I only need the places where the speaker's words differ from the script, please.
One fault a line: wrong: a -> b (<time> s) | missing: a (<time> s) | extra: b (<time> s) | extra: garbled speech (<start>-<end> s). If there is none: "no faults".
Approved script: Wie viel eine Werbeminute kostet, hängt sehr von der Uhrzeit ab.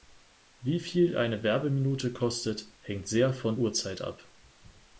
missing: der (3.5 s)